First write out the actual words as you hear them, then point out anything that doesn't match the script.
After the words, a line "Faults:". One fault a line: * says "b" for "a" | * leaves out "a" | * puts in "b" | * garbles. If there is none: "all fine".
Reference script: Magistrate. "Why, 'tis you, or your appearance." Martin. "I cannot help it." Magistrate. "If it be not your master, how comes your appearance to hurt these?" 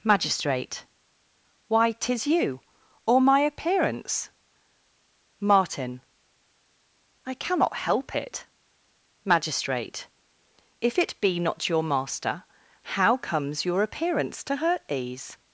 Magistrate. "Why, 'tis you, or my appearance." Martin. "I cannot help it." Magistrate. "If it be not your master, how comes your appearance to hurt these?"
Faults:
* says "my" for "your"